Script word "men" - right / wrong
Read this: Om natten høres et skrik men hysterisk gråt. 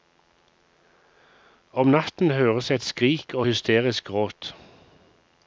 wrong